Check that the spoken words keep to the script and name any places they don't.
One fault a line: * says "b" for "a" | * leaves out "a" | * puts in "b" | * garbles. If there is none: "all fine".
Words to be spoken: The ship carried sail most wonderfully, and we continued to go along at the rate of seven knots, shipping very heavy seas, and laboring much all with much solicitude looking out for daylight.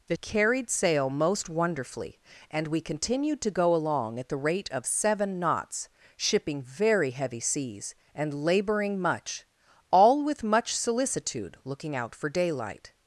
* leaves out "ship"